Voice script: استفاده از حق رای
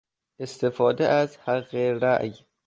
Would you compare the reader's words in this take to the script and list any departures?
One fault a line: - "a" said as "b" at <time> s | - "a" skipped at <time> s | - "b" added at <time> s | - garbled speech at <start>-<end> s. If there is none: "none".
none